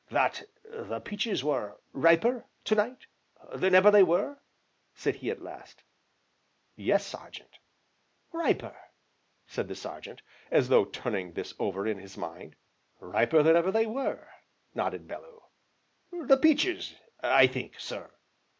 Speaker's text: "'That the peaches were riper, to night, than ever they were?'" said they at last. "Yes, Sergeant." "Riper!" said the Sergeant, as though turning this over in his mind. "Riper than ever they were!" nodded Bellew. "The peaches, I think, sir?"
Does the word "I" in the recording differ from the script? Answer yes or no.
no